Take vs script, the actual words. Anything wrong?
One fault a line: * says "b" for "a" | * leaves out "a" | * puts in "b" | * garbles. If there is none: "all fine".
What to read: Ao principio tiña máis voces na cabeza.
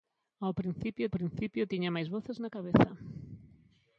* puts in "principio"